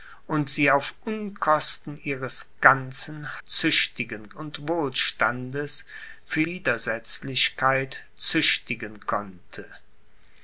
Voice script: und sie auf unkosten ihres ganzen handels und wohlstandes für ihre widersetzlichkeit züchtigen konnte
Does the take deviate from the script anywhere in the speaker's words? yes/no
yes